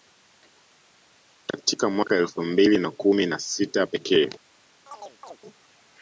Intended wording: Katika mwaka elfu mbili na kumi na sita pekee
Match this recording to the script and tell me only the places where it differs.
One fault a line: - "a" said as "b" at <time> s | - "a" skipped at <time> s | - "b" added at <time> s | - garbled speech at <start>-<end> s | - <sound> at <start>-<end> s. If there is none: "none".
- chirp at 4.9-5.4 s